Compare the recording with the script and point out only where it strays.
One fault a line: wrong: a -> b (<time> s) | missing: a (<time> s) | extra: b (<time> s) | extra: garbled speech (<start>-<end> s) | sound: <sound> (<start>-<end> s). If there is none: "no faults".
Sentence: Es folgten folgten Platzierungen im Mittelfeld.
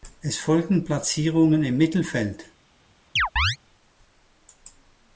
missing: folgten (0.9 s)
sound: chirp (3.2-3.6 s)